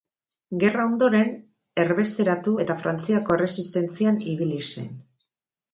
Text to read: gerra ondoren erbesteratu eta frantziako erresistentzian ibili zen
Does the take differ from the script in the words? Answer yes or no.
no